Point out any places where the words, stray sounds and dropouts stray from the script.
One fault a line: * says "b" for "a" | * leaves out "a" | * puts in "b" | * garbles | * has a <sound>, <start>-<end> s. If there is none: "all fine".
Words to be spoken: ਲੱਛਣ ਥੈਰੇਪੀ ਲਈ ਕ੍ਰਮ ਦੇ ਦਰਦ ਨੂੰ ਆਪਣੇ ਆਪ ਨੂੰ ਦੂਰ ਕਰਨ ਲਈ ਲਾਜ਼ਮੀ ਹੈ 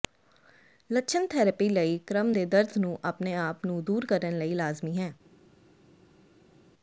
all fine